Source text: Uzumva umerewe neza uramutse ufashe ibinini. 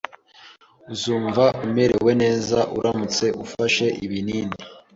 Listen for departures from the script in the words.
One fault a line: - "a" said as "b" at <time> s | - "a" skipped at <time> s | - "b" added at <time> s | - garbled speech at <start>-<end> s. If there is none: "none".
none